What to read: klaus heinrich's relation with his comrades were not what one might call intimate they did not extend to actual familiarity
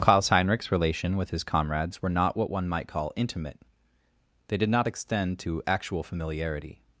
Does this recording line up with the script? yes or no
yes